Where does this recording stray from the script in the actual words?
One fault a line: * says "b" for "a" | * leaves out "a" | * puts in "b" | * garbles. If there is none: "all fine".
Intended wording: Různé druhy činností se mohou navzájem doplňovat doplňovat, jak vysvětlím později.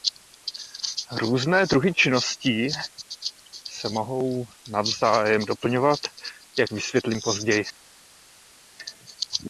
* leaves out "doplňovat"